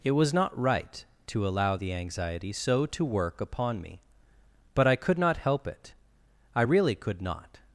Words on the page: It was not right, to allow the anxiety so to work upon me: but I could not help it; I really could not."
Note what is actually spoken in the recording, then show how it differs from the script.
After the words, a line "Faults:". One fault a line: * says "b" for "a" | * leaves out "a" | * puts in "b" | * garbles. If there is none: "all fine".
It was not right, to allow the anxiety so to work upon me: but I could not help it; I really could not."
Faults:
all fine